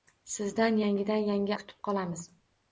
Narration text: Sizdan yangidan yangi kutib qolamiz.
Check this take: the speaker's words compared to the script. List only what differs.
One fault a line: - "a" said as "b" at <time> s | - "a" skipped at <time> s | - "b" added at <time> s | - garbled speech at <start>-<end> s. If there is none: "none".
none